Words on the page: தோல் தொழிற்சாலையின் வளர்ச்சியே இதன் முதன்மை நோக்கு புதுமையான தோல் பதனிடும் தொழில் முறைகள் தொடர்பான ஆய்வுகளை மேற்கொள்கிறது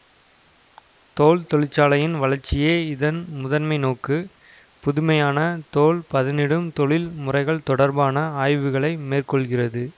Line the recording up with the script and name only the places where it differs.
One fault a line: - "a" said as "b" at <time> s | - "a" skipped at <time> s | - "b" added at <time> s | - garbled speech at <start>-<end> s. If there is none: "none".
none